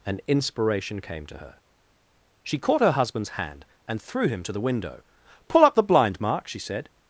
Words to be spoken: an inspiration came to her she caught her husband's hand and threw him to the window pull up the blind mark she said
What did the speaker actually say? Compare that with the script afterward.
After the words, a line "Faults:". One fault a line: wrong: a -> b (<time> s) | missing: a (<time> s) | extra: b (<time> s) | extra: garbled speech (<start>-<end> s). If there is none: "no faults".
an inspiration came to her she caught her husband's hand and threw him to the window pull up the blind mark she said
Faults:
no faults